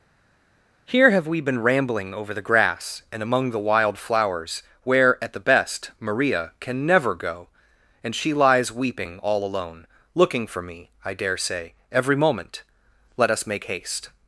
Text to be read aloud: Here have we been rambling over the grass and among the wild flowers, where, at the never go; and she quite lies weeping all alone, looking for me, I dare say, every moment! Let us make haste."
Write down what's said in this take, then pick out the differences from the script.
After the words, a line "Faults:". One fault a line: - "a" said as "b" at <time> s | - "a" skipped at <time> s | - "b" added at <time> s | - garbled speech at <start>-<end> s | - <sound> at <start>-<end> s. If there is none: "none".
Here have we been rambling over the grass and among the wild flowers, where, at the best, Maria can never go; and she lies weeping all alone, looking for me, I dare say, every moment! Let us make haste."
Faults:
- "best Maria can" added at 5.4 s
- "quite" skipped at 8.3 s